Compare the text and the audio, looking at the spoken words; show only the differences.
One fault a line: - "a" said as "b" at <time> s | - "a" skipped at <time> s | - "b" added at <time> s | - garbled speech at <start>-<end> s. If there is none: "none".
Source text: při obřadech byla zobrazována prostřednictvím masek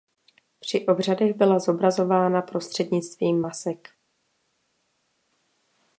none